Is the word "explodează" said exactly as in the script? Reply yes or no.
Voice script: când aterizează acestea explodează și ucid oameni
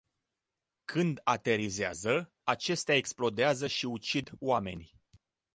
yes